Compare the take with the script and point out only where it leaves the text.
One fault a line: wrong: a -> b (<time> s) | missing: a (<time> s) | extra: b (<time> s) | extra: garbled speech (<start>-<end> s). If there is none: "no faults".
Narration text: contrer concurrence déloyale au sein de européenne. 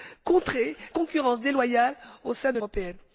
no faults